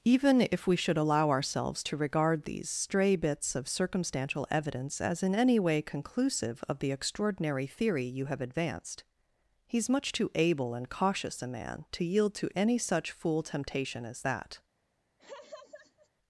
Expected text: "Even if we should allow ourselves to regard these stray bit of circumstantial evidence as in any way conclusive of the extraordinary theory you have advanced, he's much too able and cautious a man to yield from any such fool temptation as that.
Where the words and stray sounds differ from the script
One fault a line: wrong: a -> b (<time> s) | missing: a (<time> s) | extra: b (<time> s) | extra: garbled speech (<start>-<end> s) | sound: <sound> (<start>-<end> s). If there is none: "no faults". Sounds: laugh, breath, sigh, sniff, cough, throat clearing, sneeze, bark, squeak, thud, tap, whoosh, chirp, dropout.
wrong: bit -> bits (3.2 s)
wrong: from -> to (12.4 s)
sound: laugh (15.2-16.1 s)